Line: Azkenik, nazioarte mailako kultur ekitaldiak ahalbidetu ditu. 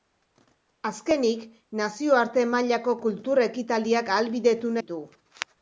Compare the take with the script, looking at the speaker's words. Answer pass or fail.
pass